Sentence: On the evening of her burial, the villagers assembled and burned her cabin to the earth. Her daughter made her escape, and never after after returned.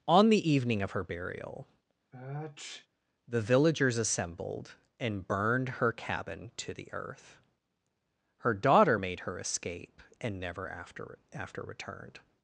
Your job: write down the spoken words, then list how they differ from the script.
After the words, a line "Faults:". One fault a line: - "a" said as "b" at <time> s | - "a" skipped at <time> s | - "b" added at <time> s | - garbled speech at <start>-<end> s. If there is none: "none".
On the evening of her burial, the villagers assembled and burned her cabin to the earth. Her daughter made her escape, and never after after returned.
Faults:
none